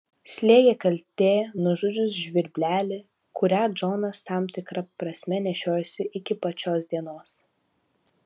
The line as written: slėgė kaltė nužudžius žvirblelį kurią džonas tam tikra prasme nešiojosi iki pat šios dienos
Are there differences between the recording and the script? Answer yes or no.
no